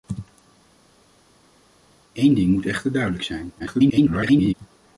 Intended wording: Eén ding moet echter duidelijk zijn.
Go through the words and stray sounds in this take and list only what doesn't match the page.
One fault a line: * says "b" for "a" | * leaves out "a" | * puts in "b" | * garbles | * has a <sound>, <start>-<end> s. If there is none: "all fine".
* garbles